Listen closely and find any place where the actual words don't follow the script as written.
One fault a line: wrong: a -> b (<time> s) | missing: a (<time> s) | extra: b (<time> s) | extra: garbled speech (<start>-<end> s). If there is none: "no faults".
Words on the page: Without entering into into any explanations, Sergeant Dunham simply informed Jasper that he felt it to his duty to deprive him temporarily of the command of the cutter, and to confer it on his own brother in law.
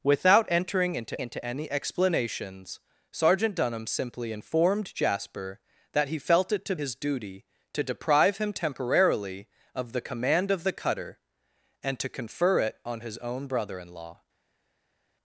no faults